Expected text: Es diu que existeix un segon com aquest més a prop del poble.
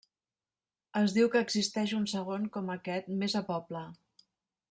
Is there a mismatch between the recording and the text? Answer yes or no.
yes